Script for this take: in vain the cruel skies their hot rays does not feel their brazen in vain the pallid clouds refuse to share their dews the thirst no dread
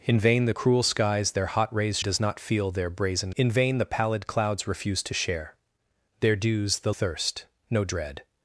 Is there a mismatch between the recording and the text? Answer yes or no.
no